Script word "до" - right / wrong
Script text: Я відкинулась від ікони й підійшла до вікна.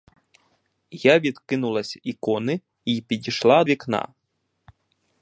wrong